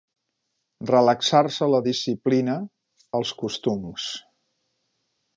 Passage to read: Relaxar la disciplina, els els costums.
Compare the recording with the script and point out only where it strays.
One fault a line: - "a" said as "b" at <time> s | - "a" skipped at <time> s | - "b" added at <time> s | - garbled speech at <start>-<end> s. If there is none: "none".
- "se" added at 1.6 s
- "els" skipped at 3.3 s